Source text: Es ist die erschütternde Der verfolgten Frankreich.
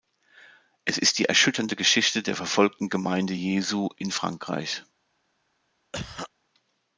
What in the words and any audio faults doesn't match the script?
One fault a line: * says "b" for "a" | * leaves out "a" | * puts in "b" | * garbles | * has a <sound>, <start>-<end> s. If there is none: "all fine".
* puts in "Geschichte"
* puts in "Gemeinde Jesu in"
* has a cough, 5.9-6.3 s